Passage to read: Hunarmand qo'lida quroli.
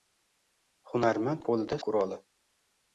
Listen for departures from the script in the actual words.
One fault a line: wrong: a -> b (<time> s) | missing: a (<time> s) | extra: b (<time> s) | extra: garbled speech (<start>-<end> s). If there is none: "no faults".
no faults